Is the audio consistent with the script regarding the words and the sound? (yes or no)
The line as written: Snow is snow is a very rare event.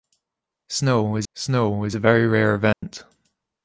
no